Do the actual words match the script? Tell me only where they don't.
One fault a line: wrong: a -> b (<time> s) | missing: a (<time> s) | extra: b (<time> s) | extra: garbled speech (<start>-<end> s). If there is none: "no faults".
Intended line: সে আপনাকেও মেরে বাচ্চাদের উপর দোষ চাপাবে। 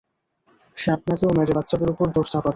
no faults